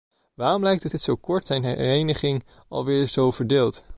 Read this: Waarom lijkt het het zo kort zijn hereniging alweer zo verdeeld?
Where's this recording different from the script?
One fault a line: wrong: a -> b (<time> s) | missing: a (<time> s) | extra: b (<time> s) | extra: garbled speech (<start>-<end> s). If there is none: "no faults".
no faults